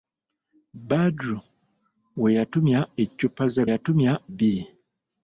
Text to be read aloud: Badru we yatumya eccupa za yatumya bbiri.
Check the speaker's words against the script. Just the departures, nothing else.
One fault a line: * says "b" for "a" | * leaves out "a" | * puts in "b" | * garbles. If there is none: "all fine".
all fine